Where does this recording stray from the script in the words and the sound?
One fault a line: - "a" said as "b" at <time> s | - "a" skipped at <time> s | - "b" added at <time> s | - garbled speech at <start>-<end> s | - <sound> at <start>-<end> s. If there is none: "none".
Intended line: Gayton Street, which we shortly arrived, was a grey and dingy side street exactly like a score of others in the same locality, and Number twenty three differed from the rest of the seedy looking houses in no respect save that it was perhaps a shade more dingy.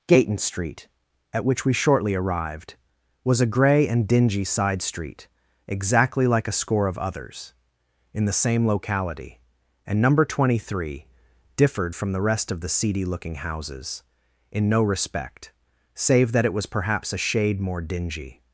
- "at" added at 1.3 s